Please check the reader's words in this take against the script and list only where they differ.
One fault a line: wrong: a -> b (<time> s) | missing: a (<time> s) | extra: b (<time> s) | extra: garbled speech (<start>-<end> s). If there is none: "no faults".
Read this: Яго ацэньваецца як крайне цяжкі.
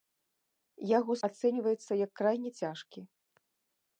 no faults